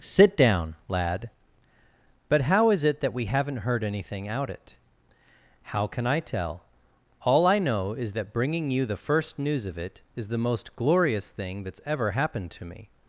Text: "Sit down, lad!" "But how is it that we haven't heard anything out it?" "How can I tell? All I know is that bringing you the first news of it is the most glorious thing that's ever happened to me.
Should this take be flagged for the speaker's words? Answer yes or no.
no